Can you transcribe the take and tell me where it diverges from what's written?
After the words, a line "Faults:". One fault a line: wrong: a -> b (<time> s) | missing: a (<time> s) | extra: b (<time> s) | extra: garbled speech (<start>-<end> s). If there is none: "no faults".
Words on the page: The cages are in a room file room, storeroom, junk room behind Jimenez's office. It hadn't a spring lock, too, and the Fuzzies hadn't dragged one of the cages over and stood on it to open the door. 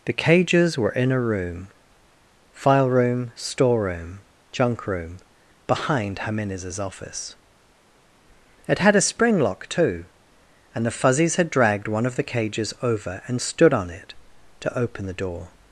The cages were in a room file room, storeroom, junk room behind Jimenez's office. It had a spring lock, too, and the Fuzzies had dragged one of the cages over and stood on it to open the door.
Faults:
wrong: are -> were (0.8 s)
wrong: hadn't -> had (8.8 s)
wrong: hadn't -> had (11.4 s)